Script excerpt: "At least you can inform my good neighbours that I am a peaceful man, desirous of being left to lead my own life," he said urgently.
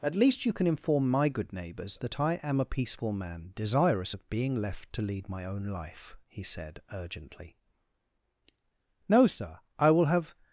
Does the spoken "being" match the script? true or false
true